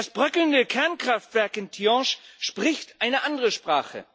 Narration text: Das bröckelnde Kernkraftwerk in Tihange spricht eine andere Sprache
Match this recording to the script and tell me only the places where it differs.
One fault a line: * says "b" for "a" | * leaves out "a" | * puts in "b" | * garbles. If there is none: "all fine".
all fine